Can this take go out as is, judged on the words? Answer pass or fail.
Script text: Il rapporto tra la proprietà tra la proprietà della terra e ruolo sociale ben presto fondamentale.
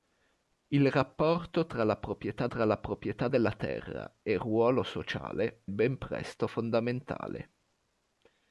pass